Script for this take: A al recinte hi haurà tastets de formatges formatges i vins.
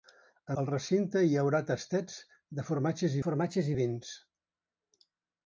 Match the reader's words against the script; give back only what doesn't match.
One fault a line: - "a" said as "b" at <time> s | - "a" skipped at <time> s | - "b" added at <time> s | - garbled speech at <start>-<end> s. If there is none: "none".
none